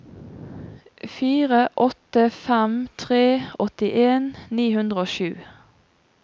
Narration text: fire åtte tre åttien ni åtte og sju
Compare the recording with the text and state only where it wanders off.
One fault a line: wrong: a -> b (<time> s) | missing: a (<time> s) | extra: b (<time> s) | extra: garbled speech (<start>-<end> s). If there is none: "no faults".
extra: fem (2.4 s)
wrong: åtte -> hundre (4.8 s)